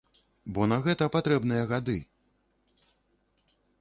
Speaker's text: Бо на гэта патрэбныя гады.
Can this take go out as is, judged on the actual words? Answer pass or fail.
pass